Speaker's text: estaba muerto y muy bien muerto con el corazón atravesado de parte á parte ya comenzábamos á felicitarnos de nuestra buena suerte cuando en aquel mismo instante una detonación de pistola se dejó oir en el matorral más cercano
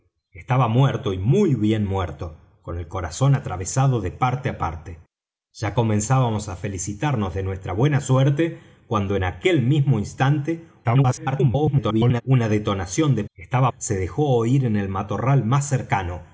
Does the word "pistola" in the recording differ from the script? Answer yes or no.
yes